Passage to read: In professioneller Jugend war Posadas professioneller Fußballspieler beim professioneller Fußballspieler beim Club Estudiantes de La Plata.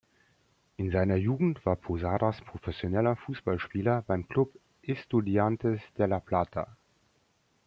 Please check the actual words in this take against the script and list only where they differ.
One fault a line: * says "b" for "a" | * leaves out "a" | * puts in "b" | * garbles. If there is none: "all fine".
* says "seiner" for "professioneller"
* leaves out "professioneller Fußballspieler beim"